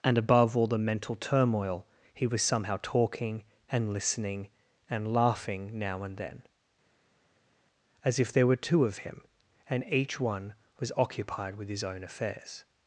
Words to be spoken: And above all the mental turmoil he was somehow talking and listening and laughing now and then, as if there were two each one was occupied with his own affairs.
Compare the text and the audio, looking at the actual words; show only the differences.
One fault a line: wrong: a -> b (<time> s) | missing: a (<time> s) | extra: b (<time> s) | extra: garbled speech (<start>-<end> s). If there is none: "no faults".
extra: of him and (8.8 s)